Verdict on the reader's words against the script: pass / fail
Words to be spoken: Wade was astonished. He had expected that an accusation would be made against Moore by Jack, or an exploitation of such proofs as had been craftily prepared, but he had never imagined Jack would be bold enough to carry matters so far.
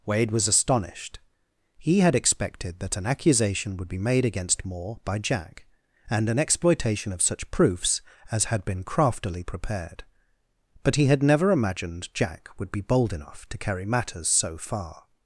fail